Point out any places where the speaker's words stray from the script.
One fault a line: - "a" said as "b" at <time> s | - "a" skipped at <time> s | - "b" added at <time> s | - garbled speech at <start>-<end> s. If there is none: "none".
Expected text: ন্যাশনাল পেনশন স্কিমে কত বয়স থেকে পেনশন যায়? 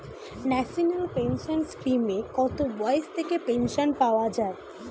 - "পাওয়া" added at 4.0 s